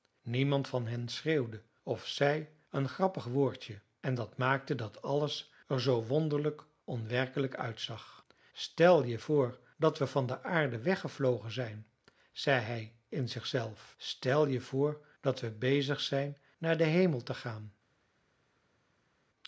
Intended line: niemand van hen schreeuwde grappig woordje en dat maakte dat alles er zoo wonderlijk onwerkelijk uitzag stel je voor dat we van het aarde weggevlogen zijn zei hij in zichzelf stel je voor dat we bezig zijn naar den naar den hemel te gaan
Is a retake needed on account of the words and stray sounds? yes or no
yes